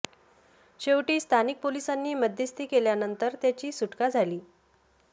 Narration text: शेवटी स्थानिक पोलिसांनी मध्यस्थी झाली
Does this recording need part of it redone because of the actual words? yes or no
yes